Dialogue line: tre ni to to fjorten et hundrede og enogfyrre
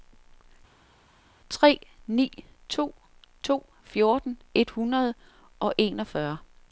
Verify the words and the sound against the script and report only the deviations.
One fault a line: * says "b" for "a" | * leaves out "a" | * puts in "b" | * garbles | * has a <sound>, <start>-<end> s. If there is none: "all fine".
all fine